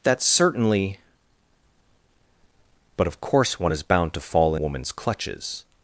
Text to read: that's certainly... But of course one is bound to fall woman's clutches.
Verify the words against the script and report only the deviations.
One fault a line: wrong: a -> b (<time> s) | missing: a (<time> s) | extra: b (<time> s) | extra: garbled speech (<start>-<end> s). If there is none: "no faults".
no faults